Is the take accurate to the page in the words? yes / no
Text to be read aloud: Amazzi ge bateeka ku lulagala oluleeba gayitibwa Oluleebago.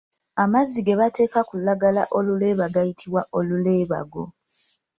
yes